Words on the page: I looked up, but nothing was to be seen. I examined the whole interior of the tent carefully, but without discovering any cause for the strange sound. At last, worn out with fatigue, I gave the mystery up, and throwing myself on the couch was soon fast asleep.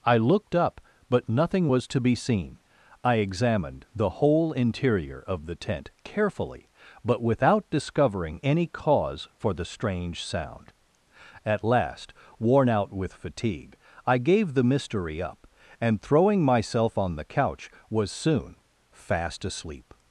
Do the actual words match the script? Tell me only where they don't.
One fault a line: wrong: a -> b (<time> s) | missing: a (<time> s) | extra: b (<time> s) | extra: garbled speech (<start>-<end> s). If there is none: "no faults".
no faults